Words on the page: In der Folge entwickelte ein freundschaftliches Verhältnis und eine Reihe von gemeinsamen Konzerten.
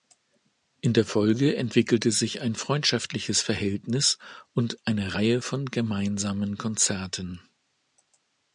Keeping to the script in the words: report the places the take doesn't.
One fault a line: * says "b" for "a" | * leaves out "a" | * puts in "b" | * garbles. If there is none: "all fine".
* puts in "sich"